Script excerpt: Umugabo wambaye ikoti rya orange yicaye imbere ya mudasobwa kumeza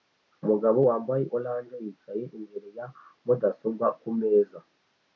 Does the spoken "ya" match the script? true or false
true